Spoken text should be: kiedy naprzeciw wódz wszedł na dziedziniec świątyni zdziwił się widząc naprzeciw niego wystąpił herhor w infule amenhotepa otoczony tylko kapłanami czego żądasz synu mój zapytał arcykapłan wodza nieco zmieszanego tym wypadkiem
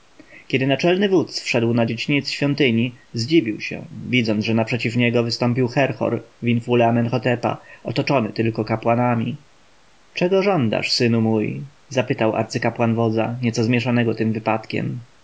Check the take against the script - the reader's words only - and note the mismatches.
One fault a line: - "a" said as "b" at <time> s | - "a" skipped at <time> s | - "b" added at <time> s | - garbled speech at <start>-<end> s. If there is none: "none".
- "naprzeciw" said as "naczelny" at 0.7 s
- "że" added at 4.4 s